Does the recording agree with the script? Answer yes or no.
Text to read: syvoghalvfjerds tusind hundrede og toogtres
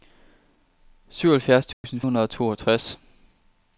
yes